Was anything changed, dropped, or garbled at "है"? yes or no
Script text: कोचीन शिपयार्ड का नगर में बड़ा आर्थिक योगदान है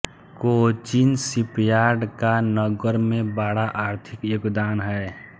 no